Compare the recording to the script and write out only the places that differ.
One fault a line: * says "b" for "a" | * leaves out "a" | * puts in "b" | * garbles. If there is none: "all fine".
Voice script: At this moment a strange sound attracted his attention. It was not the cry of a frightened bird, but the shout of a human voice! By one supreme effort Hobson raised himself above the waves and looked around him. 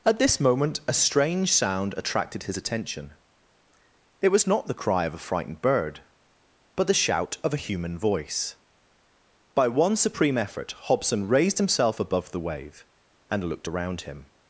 * says "wave" for "waves"